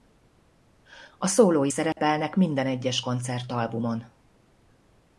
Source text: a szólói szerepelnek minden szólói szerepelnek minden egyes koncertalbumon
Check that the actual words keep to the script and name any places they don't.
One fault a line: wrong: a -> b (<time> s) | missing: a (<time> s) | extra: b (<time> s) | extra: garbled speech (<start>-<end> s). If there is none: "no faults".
missing: szólói szerepelnek minden (2.7 s)